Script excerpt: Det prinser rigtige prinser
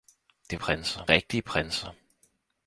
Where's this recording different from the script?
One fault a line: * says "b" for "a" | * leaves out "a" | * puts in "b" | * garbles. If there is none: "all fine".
all fine